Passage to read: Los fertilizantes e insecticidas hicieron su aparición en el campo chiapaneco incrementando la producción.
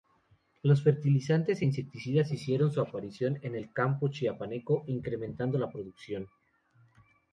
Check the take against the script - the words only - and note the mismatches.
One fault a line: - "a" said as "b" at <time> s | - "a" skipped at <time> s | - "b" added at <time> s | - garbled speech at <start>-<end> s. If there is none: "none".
none